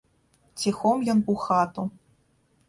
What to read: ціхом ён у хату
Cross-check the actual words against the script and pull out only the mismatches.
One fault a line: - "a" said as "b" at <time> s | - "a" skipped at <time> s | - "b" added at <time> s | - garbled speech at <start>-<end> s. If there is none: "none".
none